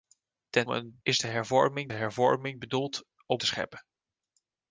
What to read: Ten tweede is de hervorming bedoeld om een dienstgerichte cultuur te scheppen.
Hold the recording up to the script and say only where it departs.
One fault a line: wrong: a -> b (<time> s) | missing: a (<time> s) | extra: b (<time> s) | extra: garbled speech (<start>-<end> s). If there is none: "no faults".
wrong: tweede -> een (0.7 s)
extra: hervorming (1.9 s)
missing: een dienstgerichte cultuur (3.4 s)